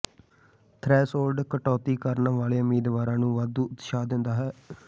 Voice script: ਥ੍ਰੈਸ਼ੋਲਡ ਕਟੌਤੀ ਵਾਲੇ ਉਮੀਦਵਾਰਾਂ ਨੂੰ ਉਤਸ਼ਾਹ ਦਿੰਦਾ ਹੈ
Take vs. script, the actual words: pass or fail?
fail